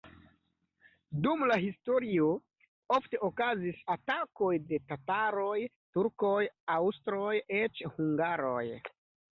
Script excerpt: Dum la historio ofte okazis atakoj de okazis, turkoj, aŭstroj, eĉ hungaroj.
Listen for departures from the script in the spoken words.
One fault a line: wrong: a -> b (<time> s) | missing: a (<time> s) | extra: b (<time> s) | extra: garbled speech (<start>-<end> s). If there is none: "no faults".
wrong: okazis -> tataroj (4.9 s)